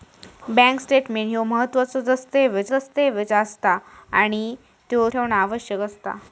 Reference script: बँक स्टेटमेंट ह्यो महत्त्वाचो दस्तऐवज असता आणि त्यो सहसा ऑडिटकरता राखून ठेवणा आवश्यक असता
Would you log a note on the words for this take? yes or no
yes